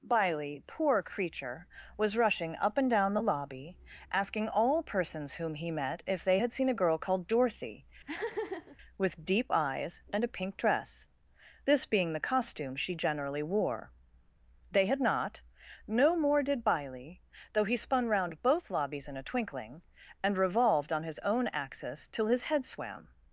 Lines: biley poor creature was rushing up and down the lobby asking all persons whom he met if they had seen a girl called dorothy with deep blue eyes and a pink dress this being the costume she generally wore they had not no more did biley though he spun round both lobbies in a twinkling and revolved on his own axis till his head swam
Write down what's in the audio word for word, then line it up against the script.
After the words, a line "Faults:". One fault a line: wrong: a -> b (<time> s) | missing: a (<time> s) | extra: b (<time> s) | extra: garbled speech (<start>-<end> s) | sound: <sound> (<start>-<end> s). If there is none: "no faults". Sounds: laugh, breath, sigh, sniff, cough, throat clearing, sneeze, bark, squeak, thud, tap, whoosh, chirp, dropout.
biley poor creature was rushing up and down the lobby asking all persons whom he met if they had seen a girl called dorothy with deep eyes and a pink dress this being the costume she generally wore they had not no more did biley though he spun round both lobbies in a twinkling and revolved on his own axis till his head swam
Faults:
sound: laugh (8.1-8.8 s)
missing: blue (9.5 s)